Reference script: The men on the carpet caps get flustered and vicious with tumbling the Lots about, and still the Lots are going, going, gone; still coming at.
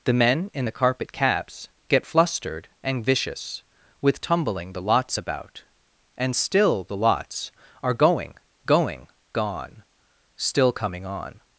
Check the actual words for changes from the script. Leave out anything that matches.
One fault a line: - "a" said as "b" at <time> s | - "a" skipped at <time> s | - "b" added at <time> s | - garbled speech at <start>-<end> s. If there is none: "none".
- "on" said as "in" at 0.5 s
- "at" said as "on" at 11.0 s